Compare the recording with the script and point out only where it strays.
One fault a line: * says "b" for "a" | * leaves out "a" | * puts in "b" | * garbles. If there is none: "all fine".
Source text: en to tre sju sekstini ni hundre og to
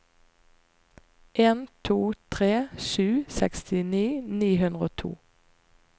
all fine